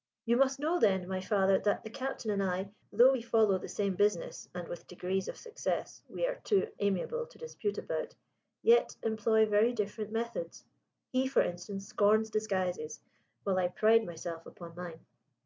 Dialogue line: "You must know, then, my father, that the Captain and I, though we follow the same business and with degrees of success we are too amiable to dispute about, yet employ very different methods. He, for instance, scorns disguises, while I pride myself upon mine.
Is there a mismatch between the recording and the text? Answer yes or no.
no